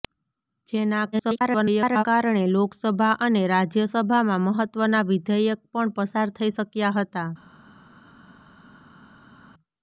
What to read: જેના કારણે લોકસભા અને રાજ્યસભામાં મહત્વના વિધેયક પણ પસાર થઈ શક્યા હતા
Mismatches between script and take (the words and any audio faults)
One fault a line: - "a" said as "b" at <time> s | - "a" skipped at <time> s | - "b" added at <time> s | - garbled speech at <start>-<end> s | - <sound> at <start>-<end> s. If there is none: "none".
- garbled speech at 1.1-2.0 s